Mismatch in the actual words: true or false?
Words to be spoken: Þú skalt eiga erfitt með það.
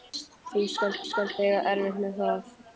true